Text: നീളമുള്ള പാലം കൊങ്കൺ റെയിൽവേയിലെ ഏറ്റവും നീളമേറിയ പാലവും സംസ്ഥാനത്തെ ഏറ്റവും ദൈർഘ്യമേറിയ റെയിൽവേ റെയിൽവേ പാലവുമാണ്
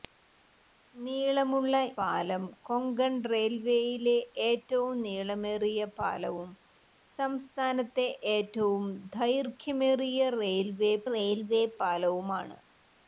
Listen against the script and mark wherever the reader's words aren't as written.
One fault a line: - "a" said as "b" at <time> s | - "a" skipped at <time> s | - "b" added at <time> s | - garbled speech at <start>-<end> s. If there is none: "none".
none